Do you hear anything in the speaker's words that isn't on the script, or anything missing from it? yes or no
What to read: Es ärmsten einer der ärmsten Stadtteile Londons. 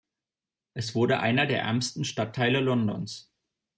yes